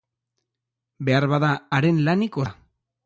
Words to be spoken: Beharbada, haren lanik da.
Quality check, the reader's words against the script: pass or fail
pass